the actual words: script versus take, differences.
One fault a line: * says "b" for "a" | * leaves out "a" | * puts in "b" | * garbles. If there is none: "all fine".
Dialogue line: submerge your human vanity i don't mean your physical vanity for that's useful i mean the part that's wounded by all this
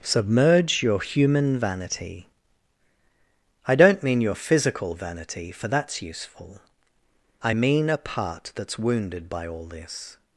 * says "a" for "the"